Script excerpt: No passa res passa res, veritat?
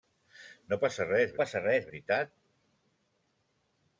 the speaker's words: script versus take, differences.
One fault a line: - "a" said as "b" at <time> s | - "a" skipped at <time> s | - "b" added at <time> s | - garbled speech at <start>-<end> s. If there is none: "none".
none